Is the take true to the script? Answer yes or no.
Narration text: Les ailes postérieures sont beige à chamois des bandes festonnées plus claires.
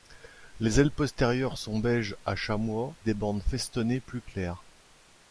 yes